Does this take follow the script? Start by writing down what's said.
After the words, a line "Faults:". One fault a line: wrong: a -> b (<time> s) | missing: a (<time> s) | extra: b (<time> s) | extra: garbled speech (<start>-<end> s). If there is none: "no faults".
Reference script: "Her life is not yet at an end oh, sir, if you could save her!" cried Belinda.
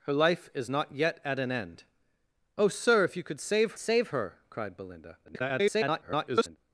"Her life is not yet at an end oh, sir, if you could save save her!" cried Belinda. [garbled]
Faults:
extra: save (3.8 s)
extra: garbled speech (5.2-6.6 s)